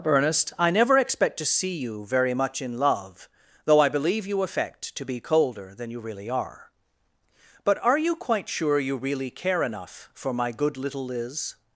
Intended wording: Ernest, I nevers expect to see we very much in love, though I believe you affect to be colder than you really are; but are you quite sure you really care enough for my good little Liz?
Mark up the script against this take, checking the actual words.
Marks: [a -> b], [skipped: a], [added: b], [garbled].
Ernest, I [nevers -> never] expect to see [we -> you] very much in love, though I believe you affect to be colder than you really are; but are you quite sure you really care enough for my good little Liz?